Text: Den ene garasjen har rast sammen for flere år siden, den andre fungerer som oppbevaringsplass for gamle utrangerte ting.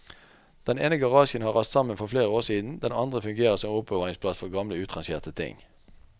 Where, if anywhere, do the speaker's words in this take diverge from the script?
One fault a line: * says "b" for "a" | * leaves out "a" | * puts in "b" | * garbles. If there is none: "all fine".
all fine